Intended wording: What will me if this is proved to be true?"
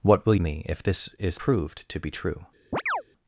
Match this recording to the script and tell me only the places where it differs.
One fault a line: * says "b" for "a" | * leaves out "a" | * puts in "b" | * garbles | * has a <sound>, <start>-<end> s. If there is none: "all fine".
* has a chirp, 2.7-3.0 s